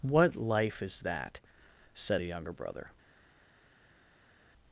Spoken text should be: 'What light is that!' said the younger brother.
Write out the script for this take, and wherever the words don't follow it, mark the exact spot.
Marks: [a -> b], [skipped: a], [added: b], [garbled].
'What [light -> life] is that!' said [the -> a] younger brother.